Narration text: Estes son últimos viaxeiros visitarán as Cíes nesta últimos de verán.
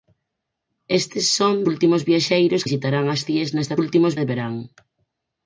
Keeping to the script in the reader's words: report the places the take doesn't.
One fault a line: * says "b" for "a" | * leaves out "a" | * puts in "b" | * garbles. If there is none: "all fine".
all fine